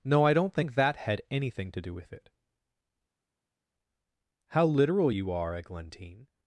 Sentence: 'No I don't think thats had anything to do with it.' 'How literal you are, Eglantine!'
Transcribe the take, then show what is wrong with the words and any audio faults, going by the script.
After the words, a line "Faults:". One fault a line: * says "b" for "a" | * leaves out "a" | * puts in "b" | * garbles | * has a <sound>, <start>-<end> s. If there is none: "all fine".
'No I don't think that had anything to do with it.' 'How literal you are, Eglantine!'
Faults:
* says "that" for "thats"